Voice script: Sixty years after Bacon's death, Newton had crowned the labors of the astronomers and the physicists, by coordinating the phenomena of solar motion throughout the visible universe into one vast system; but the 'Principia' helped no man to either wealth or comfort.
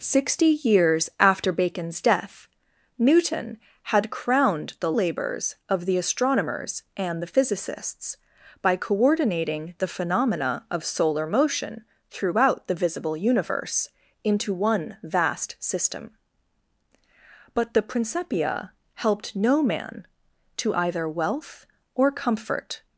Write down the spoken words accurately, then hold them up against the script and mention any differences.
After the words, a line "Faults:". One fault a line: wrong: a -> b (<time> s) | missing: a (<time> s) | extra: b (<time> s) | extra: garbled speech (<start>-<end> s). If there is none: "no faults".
Sixty years after Bacon's death, Newton had crowned the labors of the astronomers and the physicists, by coordinating the phenomena of solar motion throughout the visible universe into one vast system; but the 'Principia' helped no man to either wealth or comfort.
Faults:
no faults